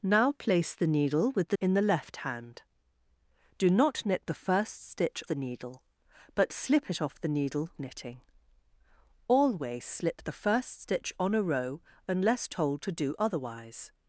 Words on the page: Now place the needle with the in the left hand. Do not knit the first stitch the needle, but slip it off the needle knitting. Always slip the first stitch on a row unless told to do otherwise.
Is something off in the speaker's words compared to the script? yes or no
no